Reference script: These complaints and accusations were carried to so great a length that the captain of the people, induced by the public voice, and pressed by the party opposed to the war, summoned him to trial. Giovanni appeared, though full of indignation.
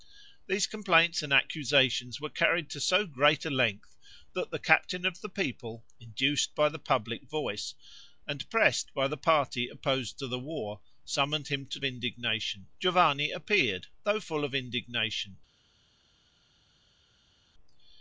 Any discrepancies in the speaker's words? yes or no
yes